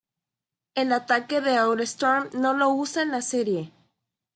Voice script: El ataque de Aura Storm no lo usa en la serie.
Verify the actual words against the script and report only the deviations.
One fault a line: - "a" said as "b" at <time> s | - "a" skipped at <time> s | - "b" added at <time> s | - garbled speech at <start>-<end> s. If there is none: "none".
none